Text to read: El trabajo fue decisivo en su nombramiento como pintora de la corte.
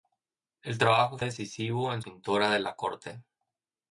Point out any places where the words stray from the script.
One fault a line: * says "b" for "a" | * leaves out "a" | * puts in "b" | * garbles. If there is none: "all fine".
* leaves out "fue"
* leaves out "su nombramiento como"